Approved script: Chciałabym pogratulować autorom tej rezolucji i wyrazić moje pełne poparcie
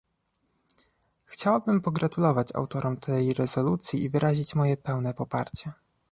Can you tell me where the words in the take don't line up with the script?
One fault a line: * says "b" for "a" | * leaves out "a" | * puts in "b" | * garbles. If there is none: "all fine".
all fine